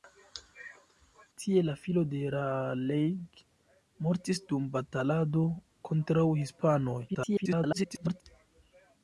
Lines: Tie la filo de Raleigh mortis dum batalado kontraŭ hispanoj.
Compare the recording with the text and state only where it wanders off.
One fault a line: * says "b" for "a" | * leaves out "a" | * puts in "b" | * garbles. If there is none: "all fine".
* garbles